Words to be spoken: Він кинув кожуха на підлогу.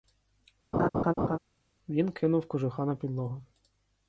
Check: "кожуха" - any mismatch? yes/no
no